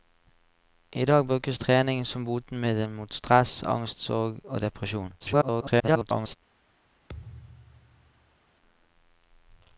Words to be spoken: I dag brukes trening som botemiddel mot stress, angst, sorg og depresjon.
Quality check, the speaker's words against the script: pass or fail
fail